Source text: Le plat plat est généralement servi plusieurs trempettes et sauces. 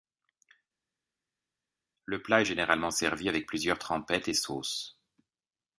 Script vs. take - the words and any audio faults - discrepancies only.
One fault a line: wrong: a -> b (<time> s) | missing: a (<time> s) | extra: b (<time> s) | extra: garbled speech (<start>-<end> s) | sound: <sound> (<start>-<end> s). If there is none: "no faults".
missing: plat (2.4 s)
extra: avec (3.3 s)